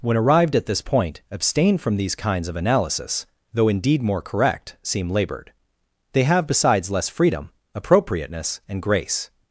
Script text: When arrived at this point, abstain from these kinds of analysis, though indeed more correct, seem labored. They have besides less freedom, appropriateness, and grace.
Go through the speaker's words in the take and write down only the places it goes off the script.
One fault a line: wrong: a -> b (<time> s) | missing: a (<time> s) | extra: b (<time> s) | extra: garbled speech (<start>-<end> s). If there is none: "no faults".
no faults